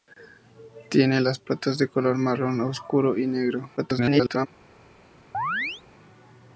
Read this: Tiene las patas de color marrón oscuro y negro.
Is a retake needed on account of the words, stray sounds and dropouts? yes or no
yes